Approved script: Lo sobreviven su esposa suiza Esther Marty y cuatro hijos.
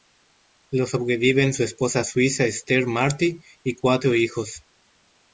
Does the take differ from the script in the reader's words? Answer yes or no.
no